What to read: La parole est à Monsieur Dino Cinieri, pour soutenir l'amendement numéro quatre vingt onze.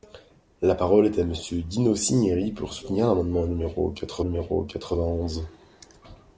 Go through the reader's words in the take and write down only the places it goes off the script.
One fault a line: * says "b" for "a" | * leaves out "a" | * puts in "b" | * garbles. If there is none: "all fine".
* puts in "numéro quatre"